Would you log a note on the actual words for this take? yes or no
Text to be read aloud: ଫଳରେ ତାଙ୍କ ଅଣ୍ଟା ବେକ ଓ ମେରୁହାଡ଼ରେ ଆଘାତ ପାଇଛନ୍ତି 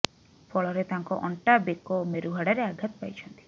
no